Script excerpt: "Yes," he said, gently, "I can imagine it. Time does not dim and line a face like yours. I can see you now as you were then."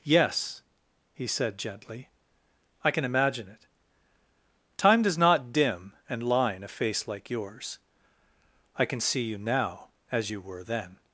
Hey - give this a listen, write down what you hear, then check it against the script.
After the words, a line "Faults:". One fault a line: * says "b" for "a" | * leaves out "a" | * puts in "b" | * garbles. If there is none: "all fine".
"Yes," he said, gently, "I can imagine it. Time does not dim and line a face like yours. I can see you now as you were then."
Faults:
all fine